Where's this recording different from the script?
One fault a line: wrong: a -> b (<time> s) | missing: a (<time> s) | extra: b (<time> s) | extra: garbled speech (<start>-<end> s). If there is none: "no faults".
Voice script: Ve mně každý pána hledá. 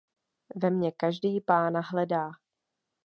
no faults